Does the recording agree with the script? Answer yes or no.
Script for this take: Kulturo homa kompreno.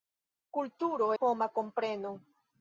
yes